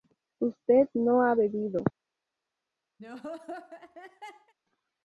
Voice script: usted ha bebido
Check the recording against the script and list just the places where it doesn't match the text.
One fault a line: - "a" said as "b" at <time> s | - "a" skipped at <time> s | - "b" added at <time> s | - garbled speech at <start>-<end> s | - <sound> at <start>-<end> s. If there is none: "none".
- "no" added at 0.9 s
- laugh at 3.0-4.5 s